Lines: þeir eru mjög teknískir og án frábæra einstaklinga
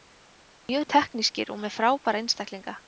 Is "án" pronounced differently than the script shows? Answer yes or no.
yes